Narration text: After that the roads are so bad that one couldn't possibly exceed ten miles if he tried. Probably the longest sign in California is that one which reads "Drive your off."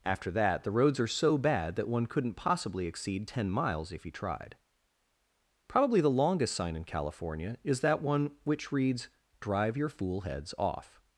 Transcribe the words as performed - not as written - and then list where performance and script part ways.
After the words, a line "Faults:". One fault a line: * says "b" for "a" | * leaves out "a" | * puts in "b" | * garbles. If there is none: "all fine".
After that the roads are so bad that one couldn't possibly exceed ten miles if he tried. Probably the longest sign in California is that one which reads "Drive your fool heads off."
Faults:
* puts in "fool heads"